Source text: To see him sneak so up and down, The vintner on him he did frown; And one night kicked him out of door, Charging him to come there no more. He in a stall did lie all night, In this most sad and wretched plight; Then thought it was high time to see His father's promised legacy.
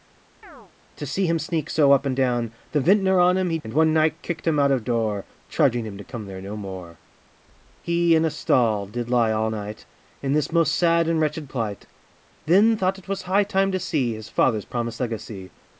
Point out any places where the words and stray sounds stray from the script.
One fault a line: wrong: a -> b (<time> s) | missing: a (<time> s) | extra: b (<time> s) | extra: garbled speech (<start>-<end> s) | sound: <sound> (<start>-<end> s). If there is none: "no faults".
sound: chirp (0.4-0.7 s)
missing: did frown (3.6 s)